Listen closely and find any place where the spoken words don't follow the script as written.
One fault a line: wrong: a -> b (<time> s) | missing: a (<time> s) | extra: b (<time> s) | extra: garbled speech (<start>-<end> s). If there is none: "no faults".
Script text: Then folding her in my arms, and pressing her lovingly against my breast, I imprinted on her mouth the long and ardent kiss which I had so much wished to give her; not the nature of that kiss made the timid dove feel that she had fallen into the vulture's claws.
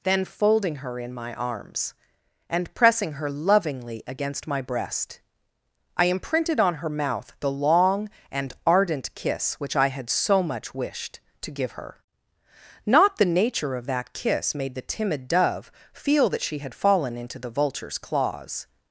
no faults